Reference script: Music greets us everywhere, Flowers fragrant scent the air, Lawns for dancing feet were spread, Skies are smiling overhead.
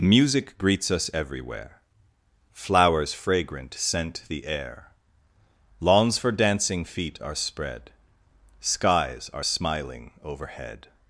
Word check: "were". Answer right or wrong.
wrong